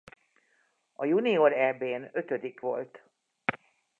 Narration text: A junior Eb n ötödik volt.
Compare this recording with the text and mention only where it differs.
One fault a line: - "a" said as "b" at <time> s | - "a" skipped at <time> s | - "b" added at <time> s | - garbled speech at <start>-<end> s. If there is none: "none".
none